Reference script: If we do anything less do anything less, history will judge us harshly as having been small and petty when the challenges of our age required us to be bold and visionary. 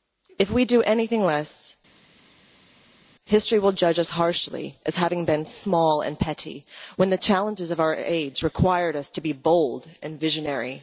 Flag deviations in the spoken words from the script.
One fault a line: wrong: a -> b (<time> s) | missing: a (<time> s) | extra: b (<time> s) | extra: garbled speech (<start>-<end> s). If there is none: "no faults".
missing: do anything less (1.8 s)